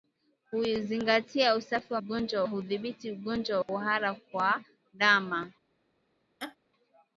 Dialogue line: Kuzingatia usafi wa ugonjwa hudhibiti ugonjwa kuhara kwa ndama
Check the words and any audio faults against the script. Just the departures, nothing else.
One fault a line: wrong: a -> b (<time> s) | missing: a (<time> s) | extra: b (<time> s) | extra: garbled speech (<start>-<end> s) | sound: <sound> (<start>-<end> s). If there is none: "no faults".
sound: laugh (6.4-6.6 s)